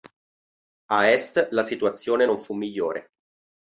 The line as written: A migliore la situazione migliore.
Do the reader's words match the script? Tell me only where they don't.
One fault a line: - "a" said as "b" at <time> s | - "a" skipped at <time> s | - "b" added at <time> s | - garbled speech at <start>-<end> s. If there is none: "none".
- "migliore" said as "est" at 1.1 s
- "non fu" added at 2.2 s